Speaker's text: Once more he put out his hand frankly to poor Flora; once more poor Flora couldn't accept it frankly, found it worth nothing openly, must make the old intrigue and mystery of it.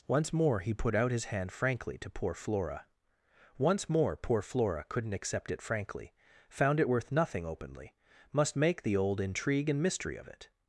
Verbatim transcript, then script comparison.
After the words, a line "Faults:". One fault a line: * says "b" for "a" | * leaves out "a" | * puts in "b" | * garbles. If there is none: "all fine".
Once more he put out his hand frankly to poor Flora; once more poor Flora couldn't accept it frankly, found it worth nothing openly, must make the old intrigue and mystery of it.
Faults:
all fine